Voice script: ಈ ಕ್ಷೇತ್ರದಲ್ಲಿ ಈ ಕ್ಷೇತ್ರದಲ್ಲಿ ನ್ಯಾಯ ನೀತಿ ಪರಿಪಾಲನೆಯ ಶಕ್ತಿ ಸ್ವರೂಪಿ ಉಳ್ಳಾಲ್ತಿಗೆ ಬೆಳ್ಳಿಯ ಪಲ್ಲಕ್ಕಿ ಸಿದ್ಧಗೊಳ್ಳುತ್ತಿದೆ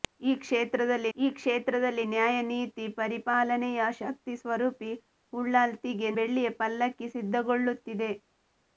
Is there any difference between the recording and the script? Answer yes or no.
no